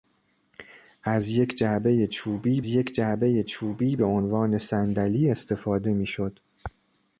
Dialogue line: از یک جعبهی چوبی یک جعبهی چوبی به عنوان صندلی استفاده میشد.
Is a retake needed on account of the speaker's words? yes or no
no